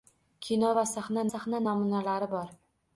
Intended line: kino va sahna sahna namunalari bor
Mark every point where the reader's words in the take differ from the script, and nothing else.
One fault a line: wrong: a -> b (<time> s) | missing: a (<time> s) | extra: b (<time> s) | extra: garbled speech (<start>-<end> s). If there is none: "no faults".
no faults